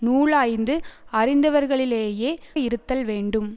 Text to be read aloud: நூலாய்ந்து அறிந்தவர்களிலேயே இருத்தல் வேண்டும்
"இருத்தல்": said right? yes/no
yes